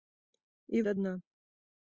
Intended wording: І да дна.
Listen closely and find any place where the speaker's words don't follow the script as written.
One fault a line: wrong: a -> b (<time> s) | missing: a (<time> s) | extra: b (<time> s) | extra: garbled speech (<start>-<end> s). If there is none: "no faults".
no faults